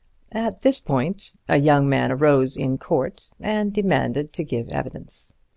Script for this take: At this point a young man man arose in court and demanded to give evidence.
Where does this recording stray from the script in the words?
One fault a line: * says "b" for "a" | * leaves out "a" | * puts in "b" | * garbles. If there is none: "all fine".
* leaves out "man"